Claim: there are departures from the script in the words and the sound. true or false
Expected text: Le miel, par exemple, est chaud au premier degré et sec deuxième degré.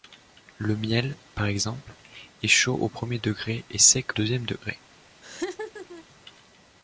true